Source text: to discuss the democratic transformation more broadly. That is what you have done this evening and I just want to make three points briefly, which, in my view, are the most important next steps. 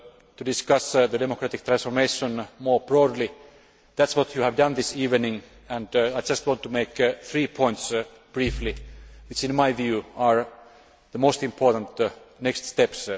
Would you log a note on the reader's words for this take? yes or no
no